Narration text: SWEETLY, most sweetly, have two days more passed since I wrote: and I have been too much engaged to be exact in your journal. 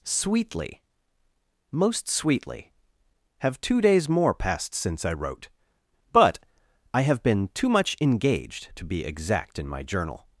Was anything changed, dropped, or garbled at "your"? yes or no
yes